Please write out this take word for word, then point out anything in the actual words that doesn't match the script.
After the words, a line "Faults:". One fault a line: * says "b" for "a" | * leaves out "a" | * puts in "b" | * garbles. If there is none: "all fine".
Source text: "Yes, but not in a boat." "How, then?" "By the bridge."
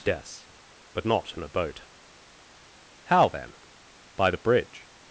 "Yes, but not in a boat." "How, then?" "By the bridge."
Faults:
all fine